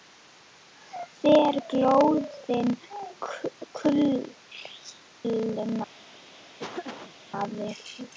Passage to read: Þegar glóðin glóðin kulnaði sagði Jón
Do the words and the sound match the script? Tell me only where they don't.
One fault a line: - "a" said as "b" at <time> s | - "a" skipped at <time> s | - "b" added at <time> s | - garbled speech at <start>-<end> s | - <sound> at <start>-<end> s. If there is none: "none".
- "glóðin" skipped at 2.7 s
- dropout at 5.1-5.2 s
- laugh at 6.6-7.2 s